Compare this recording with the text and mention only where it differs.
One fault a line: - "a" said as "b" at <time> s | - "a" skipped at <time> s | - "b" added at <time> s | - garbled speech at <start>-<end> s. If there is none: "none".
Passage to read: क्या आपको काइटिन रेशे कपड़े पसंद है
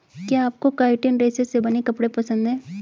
- "से बने" added at 1.4 s